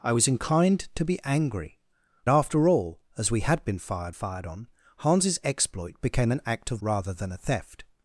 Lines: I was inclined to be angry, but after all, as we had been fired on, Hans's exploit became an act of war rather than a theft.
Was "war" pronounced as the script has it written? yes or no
no